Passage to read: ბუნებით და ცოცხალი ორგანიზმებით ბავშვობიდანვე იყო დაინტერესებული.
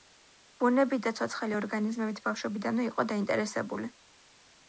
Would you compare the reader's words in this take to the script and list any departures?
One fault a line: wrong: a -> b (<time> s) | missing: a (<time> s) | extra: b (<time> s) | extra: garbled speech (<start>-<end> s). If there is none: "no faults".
no faults